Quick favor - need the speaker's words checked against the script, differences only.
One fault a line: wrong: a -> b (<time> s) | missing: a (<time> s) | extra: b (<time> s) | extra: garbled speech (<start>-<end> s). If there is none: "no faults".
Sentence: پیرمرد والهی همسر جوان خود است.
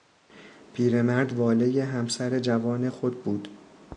wrong: است -> بود (3.2 s)